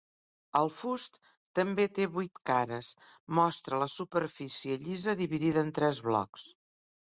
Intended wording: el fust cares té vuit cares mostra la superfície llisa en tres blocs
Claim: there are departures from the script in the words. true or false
true